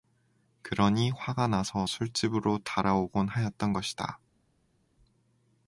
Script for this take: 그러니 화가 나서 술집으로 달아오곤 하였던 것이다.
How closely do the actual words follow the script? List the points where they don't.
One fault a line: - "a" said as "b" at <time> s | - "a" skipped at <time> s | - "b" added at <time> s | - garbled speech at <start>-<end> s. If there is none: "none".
none